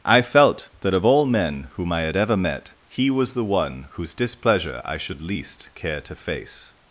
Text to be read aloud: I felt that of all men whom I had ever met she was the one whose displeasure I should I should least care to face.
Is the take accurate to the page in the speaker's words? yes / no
no